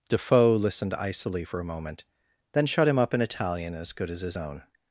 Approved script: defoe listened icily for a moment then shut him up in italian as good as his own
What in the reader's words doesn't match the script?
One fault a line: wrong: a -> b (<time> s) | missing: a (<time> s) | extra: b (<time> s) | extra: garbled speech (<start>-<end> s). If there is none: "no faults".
no faults